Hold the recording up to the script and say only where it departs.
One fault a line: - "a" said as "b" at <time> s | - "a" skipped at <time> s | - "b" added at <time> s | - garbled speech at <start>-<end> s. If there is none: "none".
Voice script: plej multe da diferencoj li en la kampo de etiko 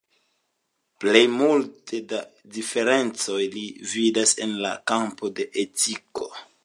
- "vidas" added at 3.9 s